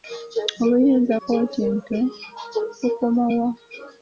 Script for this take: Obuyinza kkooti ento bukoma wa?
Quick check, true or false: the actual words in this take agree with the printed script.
true